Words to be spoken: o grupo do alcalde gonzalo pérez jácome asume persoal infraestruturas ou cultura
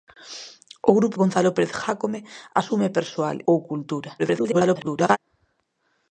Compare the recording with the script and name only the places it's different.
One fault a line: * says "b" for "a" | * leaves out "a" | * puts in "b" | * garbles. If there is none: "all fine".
* leaves out "do alcalde"
* leaves out "infraestruturas"
* garbles